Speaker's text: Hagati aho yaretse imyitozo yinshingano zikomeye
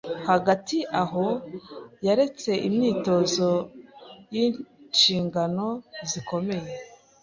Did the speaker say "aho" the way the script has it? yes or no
yes